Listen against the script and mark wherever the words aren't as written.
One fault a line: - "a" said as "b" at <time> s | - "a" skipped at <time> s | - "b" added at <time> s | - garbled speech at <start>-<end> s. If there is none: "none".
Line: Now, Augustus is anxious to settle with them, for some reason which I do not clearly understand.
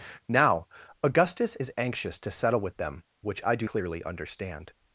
- "for some reason" skipped at 3.0 s
- "not" skipped at 3.7 s